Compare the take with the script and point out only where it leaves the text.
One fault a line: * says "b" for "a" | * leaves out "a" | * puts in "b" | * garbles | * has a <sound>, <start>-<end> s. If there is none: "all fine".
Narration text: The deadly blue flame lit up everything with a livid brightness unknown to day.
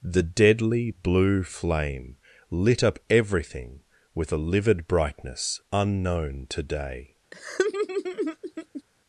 * has a laugh, 7.3-8.8 s